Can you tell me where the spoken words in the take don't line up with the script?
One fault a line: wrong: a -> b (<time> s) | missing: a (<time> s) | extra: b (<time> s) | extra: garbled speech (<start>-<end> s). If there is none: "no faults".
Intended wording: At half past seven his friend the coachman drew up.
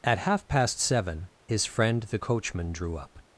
no faults